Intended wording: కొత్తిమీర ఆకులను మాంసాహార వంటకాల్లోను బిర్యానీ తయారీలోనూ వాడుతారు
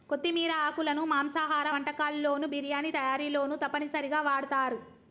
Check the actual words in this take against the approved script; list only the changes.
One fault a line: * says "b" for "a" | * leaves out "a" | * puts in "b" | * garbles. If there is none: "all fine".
* puts in "తప్పనిసరిగా"